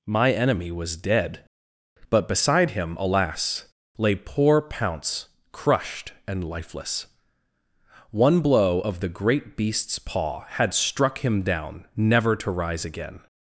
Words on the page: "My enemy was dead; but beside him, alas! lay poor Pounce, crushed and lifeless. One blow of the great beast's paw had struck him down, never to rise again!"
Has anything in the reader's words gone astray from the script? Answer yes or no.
no